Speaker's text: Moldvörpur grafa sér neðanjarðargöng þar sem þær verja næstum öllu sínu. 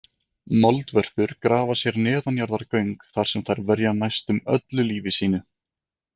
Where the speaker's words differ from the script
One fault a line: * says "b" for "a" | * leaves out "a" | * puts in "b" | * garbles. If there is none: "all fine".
* puts in "lífi"